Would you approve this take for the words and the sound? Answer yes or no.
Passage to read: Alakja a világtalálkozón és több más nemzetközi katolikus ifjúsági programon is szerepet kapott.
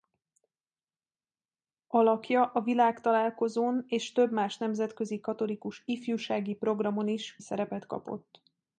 yes